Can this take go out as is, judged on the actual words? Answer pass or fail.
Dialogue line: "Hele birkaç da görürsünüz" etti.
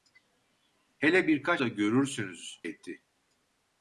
pass